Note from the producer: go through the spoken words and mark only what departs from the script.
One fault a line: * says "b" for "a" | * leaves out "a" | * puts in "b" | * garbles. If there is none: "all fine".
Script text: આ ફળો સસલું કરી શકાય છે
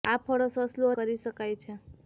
all fine